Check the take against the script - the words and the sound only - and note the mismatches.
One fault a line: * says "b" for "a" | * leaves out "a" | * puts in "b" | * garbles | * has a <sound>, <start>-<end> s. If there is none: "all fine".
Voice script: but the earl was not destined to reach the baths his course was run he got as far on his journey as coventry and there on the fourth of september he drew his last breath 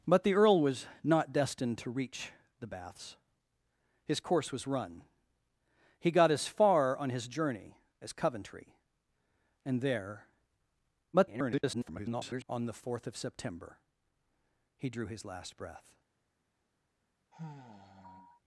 * garbles
* has a sigh, 17.3-18.4 s